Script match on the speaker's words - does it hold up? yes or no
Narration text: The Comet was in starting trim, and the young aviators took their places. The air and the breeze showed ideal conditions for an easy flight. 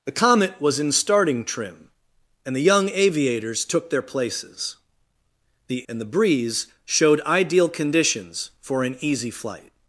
no